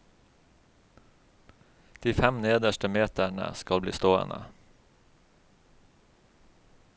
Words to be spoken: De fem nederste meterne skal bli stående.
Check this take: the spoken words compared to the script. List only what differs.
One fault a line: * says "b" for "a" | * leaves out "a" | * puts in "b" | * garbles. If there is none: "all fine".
all fine